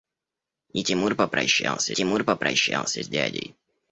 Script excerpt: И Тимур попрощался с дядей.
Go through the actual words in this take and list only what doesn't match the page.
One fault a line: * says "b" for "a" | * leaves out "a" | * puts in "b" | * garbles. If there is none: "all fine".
* puts in "Тимур попрощался"